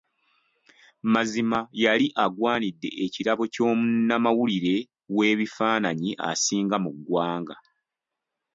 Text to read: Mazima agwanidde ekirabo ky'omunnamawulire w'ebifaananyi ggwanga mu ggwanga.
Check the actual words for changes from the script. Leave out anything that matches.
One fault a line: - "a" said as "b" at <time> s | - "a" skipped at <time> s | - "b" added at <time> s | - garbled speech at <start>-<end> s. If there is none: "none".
- "yali" added at 1.8 s
- "ggwanga" said as "asinga" at 6.3 s